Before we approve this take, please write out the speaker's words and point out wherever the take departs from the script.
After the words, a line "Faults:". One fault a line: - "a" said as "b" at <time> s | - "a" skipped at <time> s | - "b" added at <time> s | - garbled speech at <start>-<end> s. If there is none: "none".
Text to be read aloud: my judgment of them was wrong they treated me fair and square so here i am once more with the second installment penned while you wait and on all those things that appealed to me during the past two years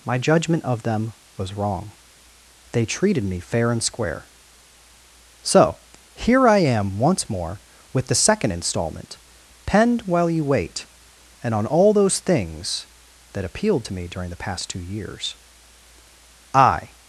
my judgment of them was wrong they treated me fair and square so here i am once more with the second installment penned while you wait and on all those things that appealed to me during the past two years i
Faults:
- "i" added at 16.5 s